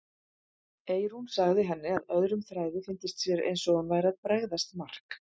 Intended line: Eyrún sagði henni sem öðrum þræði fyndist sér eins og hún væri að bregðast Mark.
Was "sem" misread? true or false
true